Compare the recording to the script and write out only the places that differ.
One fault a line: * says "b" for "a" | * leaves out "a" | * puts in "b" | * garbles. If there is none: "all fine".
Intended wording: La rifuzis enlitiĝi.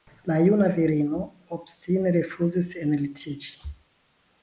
* puts in "juna virino obstine"